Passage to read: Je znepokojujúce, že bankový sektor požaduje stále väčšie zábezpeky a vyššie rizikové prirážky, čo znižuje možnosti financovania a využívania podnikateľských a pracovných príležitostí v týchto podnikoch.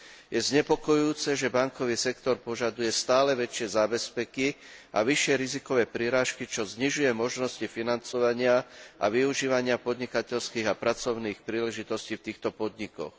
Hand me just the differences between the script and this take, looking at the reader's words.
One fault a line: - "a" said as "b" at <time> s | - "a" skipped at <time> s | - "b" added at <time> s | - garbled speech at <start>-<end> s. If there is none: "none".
none